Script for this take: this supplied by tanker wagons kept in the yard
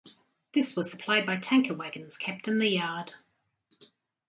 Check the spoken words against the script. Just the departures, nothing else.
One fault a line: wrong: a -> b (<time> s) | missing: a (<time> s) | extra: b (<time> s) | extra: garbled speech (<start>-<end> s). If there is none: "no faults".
extra: was (0.8 s)